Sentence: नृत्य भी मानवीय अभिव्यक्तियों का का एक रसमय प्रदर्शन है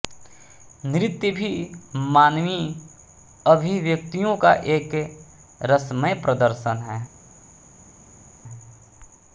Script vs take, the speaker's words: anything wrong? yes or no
yes